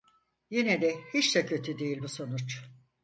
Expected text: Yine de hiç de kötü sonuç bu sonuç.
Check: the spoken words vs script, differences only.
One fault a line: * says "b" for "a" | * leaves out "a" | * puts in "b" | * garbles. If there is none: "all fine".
* says "değil" for "sonuç"